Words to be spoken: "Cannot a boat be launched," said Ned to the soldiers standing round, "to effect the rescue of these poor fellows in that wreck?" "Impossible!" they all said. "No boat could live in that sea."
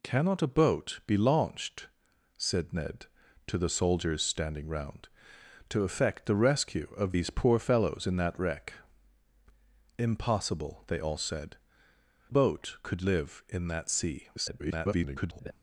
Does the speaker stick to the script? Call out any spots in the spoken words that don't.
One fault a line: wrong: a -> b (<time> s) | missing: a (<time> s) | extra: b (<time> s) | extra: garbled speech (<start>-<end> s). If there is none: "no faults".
missing: No (11.6 s)
extra: garbled speech (14.4-15.5 s)